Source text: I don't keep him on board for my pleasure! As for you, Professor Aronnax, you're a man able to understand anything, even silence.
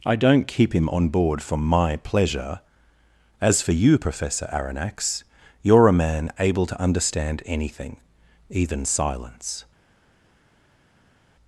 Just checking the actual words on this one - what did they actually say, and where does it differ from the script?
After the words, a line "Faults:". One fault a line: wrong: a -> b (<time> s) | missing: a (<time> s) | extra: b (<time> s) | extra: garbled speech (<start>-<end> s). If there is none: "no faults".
I don't keep him on board for my pleasure! As for you, Professor Aronnax, you're a man able to understand anything, even silence.
Faults:
no faults